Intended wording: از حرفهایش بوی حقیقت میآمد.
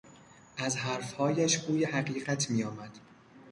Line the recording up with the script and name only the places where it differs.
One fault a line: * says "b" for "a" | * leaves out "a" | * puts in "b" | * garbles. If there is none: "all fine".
all fine